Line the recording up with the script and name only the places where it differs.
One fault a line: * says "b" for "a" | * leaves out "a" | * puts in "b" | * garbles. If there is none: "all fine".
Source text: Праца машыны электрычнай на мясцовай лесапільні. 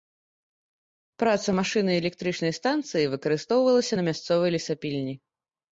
* puts in "станцыі выкарыстоўвалася"